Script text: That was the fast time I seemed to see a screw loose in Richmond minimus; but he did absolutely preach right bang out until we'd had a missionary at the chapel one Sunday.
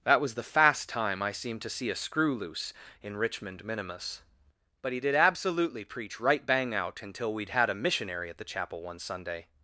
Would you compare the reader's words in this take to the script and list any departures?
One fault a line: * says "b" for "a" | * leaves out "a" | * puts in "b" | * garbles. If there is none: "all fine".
all fine